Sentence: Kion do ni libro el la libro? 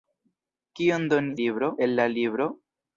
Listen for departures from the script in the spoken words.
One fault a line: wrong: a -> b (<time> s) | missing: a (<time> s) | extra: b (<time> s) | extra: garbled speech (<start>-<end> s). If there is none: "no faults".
no faults